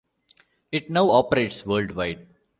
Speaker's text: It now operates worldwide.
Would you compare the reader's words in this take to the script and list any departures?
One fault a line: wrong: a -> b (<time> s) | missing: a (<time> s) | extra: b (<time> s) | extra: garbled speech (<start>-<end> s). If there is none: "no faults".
no faults